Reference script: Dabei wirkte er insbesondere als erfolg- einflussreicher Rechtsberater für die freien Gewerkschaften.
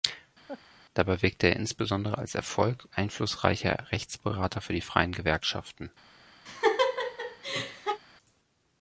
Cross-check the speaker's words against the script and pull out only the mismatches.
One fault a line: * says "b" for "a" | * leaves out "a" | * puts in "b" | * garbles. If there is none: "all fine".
all fine